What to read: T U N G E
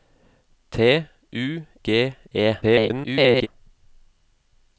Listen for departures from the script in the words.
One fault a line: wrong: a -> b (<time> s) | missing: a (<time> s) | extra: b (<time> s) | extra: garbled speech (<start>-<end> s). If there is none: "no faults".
missing: N (1.6 s)
extra: garbled speech (2.6-3.5 s)